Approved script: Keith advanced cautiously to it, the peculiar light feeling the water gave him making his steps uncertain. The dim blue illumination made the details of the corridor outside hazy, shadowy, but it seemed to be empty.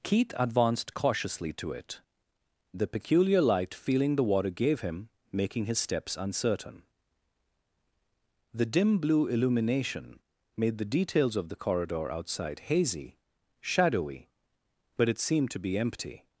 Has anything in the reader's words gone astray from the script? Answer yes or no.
no